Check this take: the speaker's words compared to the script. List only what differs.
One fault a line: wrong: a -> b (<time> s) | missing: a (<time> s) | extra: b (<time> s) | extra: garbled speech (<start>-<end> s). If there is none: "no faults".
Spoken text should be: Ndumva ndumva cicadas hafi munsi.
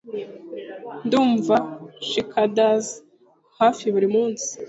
missing: ndumva (1.6 s)
extra: buri (3.9 s)